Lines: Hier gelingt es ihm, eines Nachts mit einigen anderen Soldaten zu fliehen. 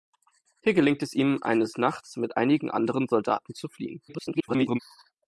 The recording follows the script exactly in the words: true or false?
false